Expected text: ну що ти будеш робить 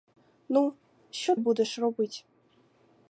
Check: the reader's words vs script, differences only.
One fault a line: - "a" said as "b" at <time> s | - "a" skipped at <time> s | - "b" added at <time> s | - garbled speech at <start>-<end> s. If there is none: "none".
- "ти" skipped at 1.4 s